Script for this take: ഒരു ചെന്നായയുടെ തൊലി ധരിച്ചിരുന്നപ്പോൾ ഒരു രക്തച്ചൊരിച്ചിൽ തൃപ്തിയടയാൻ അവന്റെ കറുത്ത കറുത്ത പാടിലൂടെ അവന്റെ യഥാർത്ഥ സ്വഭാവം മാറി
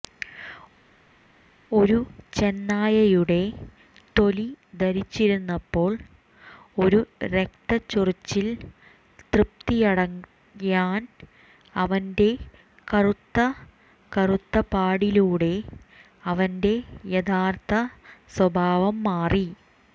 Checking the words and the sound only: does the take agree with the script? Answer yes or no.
yes